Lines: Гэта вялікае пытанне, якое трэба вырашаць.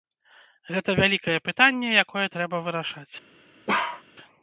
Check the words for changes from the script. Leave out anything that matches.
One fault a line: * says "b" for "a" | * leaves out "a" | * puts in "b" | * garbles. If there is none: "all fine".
all fine